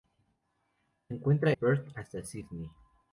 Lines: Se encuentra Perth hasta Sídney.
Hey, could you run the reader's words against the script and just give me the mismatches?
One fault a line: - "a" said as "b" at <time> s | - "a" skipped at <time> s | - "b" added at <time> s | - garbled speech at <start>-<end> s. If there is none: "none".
none